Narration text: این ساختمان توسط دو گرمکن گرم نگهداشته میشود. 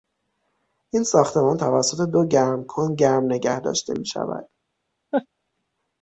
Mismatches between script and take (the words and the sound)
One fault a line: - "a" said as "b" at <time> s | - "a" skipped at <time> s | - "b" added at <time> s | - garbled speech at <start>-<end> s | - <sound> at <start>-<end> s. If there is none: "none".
- laugh at 5.1-5.3 s